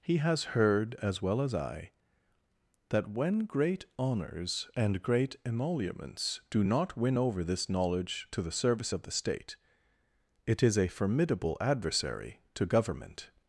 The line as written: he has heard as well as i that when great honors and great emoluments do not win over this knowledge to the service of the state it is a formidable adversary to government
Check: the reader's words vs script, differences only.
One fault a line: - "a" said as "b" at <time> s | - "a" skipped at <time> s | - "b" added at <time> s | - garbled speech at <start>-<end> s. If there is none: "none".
none